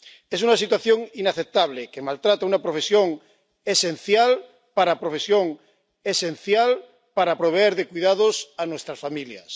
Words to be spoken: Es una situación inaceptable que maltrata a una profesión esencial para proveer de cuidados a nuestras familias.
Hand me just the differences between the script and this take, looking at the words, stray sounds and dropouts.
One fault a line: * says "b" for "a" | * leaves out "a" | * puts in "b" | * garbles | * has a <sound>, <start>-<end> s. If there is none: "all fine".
* puts in "profesión esencial para"